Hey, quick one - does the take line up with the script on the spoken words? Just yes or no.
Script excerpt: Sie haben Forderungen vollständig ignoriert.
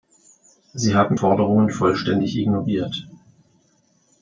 yes